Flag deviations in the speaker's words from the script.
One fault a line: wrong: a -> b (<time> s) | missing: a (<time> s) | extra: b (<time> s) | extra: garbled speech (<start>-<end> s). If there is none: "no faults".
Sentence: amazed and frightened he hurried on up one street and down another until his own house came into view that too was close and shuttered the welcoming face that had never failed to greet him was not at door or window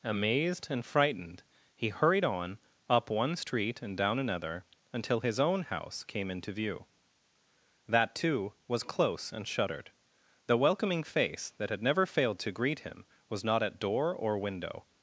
no faults